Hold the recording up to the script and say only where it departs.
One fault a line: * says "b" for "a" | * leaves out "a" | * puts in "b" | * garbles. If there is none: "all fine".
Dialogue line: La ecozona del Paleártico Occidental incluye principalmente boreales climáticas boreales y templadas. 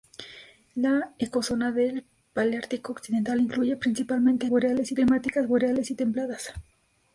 all fine